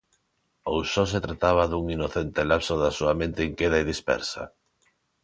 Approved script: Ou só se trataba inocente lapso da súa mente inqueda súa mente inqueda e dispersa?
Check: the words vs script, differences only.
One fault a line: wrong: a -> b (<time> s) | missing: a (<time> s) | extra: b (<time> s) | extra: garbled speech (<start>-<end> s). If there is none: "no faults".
extra: dun (1.7 s)
missing: súa mente inqueda (3.8 s)